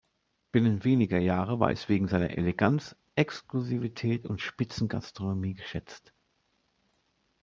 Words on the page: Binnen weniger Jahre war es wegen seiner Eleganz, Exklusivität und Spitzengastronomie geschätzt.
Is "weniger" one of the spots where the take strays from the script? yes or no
no